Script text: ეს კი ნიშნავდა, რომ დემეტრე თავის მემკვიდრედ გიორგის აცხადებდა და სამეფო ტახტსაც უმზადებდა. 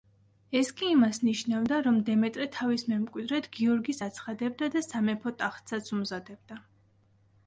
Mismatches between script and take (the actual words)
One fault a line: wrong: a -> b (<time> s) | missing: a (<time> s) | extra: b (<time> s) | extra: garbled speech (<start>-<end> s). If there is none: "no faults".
extra: იმას (0.9 s)